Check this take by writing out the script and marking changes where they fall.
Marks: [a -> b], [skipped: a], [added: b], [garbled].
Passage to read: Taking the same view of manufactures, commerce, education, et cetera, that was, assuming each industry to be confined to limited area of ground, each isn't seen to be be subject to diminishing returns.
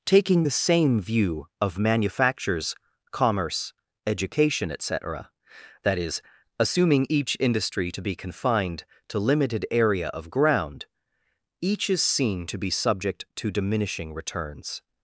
Taking the same view of manufactures, commerce, education, et cetera, that [was, -> is] assuming each industry to be confined to limited area of ground, each [isn't -> is] seen to be [skipped: be] subject to diminishing returns.